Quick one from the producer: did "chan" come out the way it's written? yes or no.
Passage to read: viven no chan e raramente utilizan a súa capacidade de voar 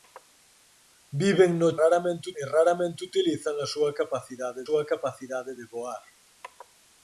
no